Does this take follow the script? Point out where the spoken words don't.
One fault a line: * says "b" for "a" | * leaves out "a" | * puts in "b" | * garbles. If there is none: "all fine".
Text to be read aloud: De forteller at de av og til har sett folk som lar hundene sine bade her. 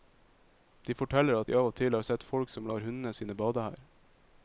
all fine